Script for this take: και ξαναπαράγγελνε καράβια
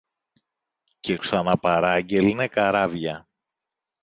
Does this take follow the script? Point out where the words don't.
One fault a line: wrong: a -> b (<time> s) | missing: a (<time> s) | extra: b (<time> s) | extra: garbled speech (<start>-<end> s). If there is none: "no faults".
no faults